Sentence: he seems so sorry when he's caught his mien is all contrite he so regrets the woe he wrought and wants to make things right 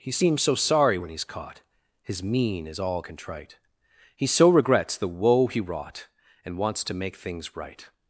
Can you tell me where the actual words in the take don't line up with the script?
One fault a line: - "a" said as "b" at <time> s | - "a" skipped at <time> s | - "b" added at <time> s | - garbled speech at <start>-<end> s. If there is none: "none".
none